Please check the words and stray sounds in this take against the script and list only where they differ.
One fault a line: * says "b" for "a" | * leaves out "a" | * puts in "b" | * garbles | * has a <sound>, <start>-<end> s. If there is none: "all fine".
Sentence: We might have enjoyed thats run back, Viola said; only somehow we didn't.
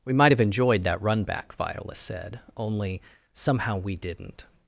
* says "that" for "thats"